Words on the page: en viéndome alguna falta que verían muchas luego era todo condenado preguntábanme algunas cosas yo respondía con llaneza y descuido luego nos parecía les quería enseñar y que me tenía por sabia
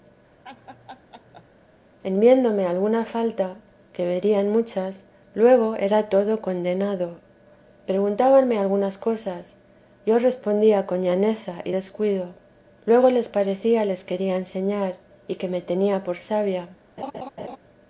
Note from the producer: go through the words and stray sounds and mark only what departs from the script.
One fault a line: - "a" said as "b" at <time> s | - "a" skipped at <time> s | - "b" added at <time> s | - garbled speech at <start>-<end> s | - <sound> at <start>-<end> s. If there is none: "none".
- laugh at 0.4-1.5 s
- "nos" said as "les" at 13.1 s
- laugh at 17.0-17.6 s